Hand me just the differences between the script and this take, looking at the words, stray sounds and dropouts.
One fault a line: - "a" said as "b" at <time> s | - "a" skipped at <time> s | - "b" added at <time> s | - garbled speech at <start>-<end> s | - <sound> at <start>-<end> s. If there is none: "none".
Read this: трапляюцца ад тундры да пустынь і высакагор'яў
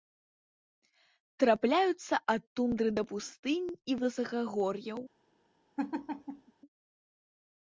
- laugh at 5.8-6.5 s